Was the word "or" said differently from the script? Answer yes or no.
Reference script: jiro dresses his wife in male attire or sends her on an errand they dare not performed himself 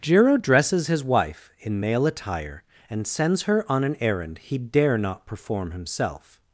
yes